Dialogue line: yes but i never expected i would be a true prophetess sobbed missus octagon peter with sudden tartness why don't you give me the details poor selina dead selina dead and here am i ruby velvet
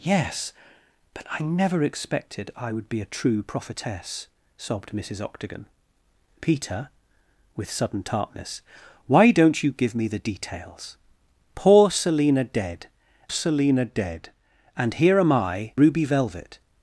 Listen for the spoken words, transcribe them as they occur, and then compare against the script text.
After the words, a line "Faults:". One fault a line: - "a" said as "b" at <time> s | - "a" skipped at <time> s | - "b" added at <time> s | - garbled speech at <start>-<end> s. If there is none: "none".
yes but i never expected i would be a true prophetess sobbed missus octagon peter with sudden tartness why don't you give me the details poor selina dead selina dead and here am i ruby velvet
Faults:
none